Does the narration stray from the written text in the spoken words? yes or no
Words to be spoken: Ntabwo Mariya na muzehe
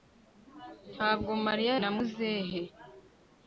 no